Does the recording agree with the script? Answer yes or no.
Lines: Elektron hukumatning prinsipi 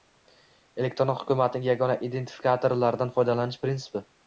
no